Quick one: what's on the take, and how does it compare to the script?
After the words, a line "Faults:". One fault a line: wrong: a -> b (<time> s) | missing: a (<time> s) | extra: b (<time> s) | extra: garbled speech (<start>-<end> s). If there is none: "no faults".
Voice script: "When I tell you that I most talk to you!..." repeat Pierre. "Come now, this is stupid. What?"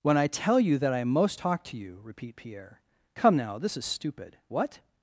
"When I tell you that I most talk to you!..." repeat Pierre. "Come now, this is stupid. What?"
Faults:
no faults